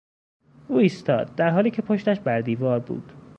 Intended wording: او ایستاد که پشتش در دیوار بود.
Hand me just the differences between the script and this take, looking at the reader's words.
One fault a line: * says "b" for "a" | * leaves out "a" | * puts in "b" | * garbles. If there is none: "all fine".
* puts in "در حالی"
* says "بر" for "در"